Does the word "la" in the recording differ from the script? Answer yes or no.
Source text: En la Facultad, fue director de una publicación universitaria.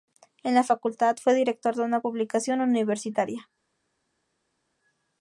no